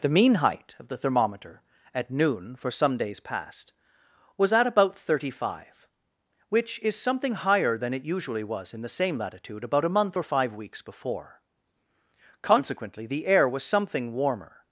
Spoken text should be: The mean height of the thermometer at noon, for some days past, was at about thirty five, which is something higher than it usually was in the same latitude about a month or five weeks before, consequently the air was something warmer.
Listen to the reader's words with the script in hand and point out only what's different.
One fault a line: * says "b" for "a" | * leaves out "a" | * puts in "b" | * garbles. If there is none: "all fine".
all fine